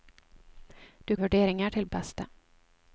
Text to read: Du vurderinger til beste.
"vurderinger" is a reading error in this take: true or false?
false